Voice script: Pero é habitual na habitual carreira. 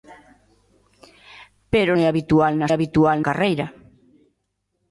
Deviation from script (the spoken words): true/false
false